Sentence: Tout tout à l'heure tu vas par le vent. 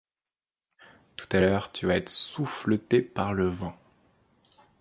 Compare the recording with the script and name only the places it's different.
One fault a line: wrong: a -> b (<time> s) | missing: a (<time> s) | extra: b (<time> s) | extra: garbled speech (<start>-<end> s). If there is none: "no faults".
missing: tout (1.3 s)
extra: être souffleté (1.9 s)